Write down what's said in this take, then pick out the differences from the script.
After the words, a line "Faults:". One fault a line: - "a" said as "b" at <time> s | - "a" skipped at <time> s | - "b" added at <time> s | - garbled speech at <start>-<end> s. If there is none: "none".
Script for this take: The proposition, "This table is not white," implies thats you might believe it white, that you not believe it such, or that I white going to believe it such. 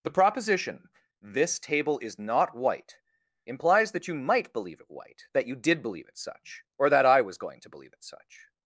The proposition, "This table is not white," implies that you might believe it white, that you did believe it such, or that I was going to believe it such.
Faults:
- "thats" said as "that" at 3.9 s
- "not" said as "did" at 5.5 s
- "white" said as "was" at 7.2 s